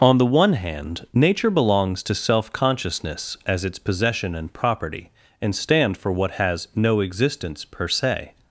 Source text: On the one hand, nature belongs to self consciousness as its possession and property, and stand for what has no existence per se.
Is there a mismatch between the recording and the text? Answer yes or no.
no